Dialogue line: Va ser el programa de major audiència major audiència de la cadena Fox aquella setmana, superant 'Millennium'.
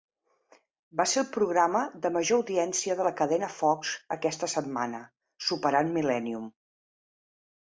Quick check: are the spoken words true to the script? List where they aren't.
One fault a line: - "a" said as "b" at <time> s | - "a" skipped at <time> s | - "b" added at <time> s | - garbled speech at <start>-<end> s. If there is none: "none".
- "major audiència" skipped at 3.0 s
- "aquella" said as "aquesta" at 4.2 s